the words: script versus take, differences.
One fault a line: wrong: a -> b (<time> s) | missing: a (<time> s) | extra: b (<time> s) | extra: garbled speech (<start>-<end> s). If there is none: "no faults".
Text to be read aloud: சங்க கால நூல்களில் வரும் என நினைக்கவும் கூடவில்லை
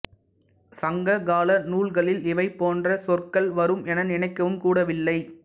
extra: இவை போன்ற சொற்கள் (2.3 s)